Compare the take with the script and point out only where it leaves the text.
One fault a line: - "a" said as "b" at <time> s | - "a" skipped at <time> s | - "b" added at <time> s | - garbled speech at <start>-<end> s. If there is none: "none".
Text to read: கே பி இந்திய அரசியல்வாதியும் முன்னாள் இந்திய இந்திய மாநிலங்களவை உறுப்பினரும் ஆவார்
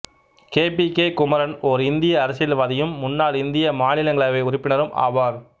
- "கே குமரன் ஓர்" added at 0.9 s
- "இந்திய" skipped at 3.7 s